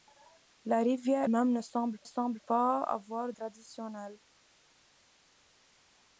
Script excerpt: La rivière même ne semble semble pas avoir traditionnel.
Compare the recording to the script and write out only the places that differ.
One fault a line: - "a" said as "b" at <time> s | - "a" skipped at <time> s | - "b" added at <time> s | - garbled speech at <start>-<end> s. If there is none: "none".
none